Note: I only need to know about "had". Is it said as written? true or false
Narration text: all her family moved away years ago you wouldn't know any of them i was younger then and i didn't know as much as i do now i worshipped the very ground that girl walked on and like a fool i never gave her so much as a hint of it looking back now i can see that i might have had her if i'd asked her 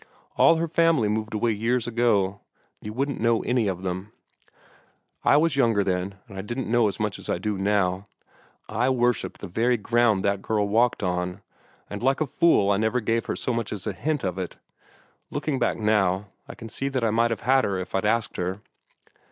true